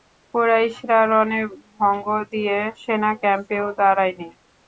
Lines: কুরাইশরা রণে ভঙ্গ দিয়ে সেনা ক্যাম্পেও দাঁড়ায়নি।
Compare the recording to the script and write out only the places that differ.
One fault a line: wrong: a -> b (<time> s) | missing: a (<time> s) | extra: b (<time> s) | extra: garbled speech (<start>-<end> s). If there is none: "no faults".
no faults